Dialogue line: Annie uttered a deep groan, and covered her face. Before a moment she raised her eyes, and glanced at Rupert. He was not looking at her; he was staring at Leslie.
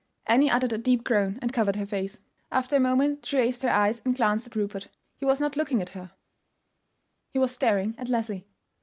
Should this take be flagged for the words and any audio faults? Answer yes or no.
yes